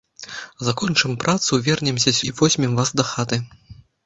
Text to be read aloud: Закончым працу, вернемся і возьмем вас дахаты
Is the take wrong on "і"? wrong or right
right